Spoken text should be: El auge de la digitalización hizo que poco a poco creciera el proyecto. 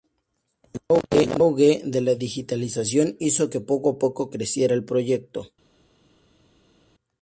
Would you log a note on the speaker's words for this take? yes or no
no